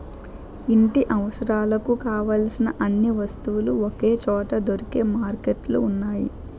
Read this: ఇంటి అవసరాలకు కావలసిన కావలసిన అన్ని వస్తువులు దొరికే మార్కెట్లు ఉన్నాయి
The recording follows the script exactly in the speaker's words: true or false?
false